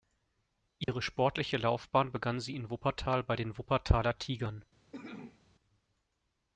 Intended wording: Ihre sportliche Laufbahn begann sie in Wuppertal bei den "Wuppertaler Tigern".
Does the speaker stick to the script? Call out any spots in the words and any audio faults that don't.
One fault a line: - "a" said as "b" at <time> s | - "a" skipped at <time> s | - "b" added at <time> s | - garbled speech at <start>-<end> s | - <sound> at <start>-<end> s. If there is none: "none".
- dropout at 0.8-0.9 s
- cough at 4.9-5.4 s